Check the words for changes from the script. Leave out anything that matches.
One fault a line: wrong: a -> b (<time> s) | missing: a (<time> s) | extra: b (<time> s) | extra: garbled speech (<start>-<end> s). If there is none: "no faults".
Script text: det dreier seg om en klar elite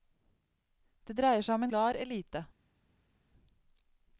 missing: en (1.7 s)